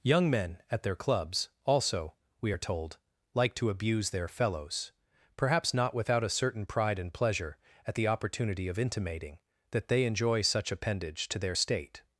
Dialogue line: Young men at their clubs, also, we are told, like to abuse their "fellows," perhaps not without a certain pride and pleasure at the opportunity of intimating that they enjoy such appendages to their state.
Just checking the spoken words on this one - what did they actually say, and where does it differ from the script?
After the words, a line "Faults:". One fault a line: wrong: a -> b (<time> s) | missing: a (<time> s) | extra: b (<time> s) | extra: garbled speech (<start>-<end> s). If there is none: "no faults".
Young men at their clubs, also, we are told, like to abuse their "fellows," perhaps not without a certain pride and pleasure at the opportunity of intimating that they enjoy such appendage to their state.
Faults:
wrong: appendages -> appendage (10.7 s)